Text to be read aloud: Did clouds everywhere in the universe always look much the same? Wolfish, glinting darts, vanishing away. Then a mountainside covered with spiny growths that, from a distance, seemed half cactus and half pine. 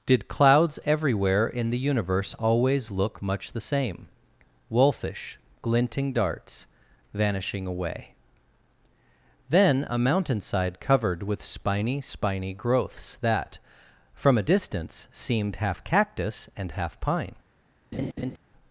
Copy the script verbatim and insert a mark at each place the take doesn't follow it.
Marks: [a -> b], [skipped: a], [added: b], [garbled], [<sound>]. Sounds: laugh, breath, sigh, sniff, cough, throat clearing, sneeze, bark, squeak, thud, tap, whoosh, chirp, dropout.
Did clouds everywhere in the universe always look much the same? Wolfish, glinting darts, vanishing away. Then a mountainside covered with spiny [added: spiny] growths that, from a distance, seemed half cactus and half pine. [laugh]